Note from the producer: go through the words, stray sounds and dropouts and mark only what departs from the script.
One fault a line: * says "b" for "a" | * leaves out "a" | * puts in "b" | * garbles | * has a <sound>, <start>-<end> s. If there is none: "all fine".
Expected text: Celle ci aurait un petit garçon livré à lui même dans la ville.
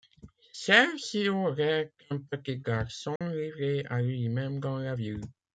* has a dropout, 3.2-3.2 s